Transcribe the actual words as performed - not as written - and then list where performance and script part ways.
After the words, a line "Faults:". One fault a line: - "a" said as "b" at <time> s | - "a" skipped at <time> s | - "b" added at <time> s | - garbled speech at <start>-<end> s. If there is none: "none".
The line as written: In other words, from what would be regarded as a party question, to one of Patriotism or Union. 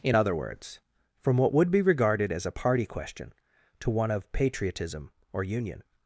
In other words, from what would be regarded as a party question, to one of Patriotism or Union.
Faults:
none